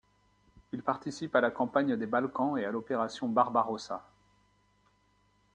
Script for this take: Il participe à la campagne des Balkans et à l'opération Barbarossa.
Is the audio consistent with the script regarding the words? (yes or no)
yes